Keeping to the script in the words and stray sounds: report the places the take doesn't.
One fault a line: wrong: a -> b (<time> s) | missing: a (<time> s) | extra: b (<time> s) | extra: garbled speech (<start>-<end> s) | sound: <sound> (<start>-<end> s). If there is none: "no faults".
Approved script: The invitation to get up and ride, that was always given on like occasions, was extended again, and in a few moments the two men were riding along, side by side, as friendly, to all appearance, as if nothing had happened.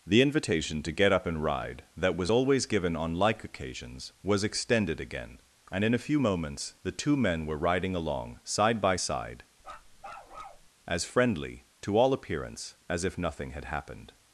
sound: bark (9.6-10.7 s)